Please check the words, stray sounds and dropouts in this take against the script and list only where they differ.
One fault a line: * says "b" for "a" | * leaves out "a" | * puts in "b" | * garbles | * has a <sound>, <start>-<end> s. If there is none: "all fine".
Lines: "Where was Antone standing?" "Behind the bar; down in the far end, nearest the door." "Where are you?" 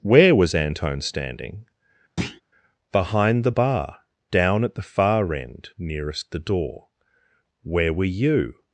* has a thud, 2.2-2.4 s
* says "at" for "in"
* says "were" for "are"